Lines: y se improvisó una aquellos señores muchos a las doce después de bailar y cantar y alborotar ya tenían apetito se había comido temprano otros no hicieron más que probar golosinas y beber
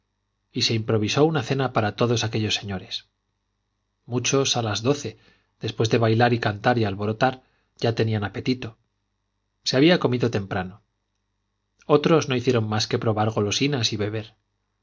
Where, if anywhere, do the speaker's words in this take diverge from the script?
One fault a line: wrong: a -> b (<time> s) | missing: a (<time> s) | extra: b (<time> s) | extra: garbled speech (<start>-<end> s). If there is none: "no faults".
extra: cena para todos (1.4 s)